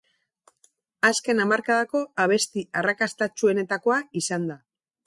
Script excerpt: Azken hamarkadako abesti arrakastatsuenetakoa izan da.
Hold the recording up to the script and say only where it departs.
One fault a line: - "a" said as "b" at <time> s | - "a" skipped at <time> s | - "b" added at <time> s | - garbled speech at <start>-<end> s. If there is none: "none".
none